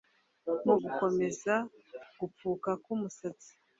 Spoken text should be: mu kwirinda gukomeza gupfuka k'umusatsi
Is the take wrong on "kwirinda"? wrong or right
wrong